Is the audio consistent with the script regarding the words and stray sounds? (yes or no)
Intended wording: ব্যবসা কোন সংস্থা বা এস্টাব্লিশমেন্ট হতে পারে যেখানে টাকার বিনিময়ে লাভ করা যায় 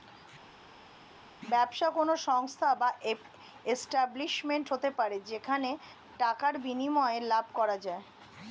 yes